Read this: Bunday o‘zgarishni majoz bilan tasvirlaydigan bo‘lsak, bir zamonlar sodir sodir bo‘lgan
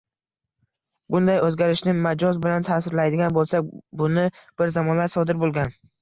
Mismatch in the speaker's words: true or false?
true